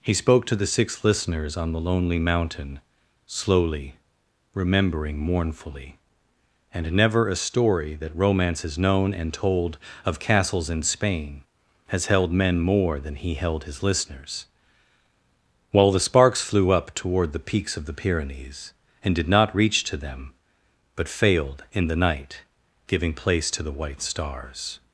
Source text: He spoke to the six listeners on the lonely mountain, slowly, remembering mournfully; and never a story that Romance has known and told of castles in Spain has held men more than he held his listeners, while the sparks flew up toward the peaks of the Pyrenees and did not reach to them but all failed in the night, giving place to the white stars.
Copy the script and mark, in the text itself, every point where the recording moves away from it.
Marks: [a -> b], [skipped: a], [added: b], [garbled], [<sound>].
He spoke to the six listeners on the lonely mountain, slowly, remembering mournfully; and never a story that Romance has known and told of castles in Spain has held men more than he held his listeners, while the sparks flew up toward the peaks of the Pyrenees and did not reach to them but [skipped: all] failed in the night, giving place to the white stars.